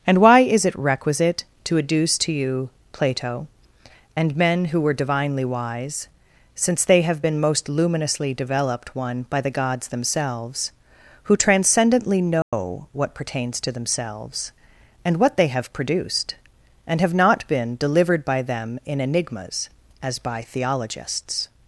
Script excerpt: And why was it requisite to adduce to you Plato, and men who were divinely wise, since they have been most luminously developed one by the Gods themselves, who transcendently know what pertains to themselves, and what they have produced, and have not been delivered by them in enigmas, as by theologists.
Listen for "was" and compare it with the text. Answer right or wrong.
wrong